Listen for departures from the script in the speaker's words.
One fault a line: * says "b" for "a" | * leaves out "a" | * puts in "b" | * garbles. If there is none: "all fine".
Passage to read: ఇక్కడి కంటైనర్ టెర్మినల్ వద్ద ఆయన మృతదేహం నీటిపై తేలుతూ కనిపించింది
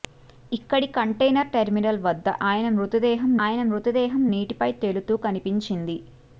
* puts in "ఆయన మృతదేహం"